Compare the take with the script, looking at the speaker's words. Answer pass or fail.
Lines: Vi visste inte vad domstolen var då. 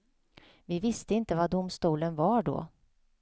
pass